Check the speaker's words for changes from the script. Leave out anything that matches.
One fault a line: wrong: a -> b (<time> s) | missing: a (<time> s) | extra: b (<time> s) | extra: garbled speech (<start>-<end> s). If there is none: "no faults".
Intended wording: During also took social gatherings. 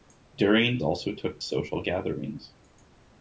no faults